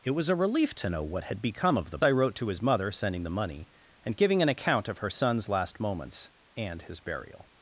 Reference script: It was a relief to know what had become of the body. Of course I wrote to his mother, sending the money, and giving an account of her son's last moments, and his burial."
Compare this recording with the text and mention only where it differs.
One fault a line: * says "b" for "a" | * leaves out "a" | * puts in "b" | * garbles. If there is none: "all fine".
* leaves out "body Of course"